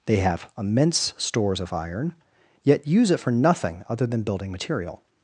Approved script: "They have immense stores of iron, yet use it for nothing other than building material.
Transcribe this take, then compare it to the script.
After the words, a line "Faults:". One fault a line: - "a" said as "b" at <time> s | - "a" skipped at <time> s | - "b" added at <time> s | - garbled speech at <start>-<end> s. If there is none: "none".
"They have immense stores of iron, yet use it for nothing other than building material.
Faults:
none